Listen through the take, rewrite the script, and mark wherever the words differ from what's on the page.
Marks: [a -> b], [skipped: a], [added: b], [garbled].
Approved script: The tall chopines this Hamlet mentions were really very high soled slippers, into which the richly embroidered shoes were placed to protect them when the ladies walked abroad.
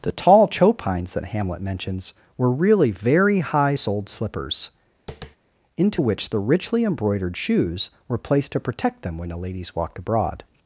The tall chopines [this -> that] Hamlet mentions were really very high soled slippers, into which the richly embroidered shoes were placed to protect them when the ladies walked abroad.